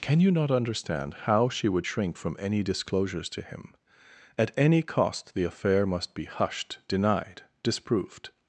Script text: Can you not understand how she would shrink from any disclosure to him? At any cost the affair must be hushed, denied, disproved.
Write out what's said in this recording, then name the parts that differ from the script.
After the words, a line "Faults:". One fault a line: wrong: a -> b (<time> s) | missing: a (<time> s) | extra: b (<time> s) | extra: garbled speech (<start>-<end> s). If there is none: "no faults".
Can you not understand how she would shrink from any disclosures to him? At any cost the affair must be hushed, denied, disproved.
Faults:
wrong: disclosure -> disclosures (2.6 s)